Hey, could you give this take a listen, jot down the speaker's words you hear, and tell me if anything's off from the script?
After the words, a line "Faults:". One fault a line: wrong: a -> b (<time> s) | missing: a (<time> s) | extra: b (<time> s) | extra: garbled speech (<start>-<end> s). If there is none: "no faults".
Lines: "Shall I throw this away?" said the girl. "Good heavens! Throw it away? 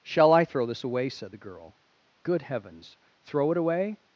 "Shall I throw this away?" said the girl. "Good heavens! Throw it away?
Faults:
no faults